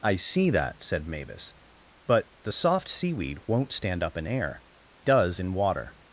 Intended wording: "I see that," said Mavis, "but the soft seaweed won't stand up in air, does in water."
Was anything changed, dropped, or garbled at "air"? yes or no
no